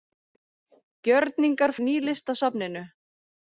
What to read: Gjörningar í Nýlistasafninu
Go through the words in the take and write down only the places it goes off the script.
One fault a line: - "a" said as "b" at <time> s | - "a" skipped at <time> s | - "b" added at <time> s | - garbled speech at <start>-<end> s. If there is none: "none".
none